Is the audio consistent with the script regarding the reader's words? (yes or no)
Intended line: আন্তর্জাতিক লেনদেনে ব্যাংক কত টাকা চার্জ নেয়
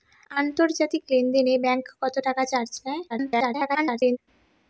no